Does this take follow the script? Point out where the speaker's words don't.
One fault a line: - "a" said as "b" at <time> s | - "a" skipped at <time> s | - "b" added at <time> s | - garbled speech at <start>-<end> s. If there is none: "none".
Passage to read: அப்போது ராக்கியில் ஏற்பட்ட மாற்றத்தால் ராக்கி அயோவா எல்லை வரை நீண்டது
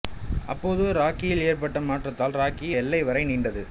- "அயோவா" skipped at 2.7 s